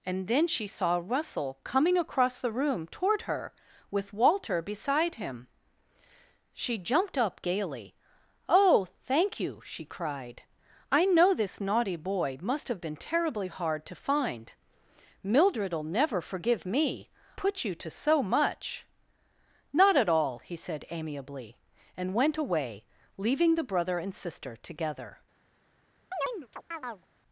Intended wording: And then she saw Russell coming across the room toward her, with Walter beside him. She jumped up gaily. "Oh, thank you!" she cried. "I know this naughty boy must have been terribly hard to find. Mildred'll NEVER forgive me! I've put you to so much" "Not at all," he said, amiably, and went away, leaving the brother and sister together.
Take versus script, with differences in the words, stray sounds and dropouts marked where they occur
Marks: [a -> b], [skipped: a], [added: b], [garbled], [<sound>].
And then she saw Russell coming across the room toward her, with Walter beside him. She jumped up gaily. "Oh, thank you!" she cried. "I know this naughty boy must have been terribly hard to find. Mildred'll NEVER forgive me! [skipped: I've] put you to so much" "Not at all," he said, amiably, and went away, leaving the brother and sister together. [chirp]